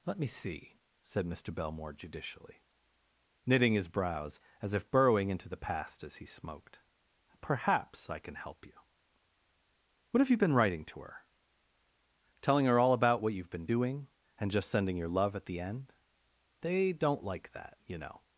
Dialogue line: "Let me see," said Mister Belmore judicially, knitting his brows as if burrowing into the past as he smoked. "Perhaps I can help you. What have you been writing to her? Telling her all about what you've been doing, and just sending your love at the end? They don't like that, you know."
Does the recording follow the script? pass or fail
pass